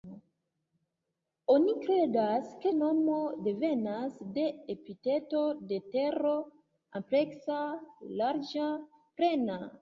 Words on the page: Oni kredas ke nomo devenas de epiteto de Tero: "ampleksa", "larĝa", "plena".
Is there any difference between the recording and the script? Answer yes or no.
no